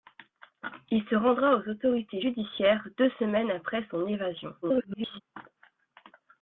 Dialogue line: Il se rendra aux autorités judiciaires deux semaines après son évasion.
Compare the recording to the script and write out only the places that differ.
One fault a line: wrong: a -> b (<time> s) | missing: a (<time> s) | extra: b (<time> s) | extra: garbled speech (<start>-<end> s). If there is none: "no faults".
extra: garbled speech (4.6-5.2 s)